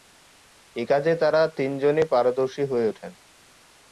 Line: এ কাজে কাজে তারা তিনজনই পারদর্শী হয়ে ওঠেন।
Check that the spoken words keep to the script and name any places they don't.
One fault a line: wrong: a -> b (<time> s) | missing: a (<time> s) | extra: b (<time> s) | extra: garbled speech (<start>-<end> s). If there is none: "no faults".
missing: কাজে (1.1 s)